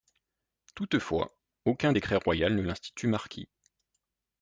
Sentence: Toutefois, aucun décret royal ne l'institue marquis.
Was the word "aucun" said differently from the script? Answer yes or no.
no